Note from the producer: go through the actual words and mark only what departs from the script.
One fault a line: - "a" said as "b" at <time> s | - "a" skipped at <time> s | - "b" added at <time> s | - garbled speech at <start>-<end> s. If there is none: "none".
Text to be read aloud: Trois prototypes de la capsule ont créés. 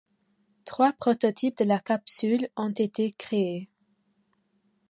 - "été" added at 2.7 s